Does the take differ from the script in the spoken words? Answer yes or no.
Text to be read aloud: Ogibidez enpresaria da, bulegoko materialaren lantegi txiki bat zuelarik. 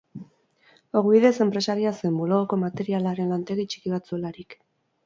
yes